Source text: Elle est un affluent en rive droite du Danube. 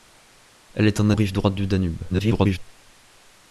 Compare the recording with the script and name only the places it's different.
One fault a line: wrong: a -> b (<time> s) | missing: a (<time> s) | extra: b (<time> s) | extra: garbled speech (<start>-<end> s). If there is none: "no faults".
missing: affluent (1.1 s)
extra: garbled speech (2.1-2.6 s)